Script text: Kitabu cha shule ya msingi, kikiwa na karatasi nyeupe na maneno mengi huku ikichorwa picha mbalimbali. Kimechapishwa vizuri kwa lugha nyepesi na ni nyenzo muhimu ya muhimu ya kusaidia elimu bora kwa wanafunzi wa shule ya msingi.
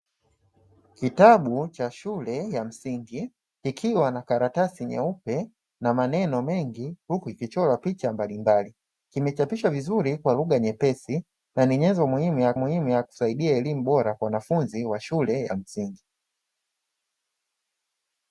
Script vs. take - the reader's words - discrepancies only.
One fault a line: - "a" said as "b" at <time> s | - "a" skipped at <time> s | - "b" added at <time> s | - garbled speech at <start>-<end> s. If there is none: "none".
none